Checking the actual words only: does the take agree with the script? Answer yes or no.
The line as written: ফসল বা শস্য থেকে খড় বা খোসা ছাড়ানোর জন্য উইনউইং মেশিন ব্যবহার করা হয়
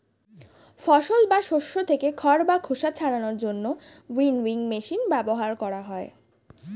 yes